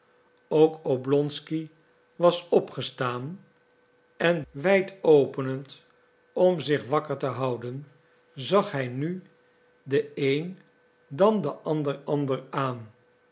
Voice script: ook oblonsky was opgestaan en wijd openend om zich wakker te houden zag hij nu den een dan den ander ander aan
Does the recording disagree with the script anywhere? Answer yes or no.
no